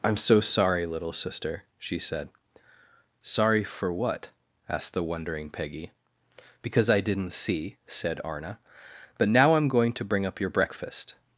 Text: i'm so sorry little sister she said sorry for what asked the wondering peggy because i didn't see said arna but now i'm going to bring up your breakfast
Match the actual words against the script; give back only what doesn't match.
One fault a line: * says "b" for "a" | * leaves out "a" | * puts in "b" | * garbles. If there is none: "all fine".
all fine